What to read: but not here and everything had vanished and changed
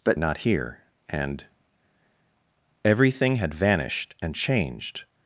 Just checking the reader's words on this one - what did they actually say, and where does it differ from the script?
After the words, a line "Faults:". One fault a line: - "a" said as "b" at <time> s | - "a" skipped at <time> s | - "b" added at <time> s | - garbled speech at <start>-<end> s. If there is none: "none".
but not here and everything had vanished and changed
Faults:
none